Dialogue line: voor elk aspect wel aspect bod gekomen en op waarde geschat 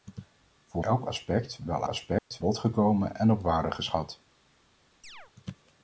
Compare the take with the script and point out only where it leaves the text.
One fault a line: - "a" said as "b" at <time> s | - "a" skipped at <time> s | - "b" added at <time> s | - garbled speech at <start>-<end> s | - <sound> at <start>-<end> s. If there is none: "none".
- dropout at 2.2-2.3 s
- chirp at 5.0-5.3 s